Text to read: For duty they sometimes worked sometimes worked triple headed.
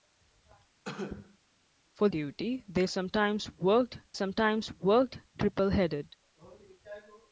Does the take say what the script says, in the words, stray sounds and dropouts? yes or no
no